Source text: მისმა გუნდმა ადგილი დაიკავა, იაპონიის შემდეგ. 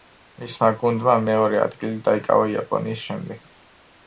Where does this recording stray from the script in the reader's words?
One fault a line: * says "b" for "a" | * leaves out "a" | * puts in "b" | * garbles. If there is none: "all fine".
* puts in "მეორე"